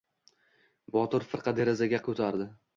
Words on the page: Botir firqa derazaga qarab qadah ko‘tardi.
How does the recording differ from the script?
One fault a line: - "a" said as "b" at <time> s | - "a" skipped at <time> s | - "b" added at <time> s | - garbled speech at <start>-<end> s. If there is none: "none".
- "qarab qadah" skipped at 2.0 s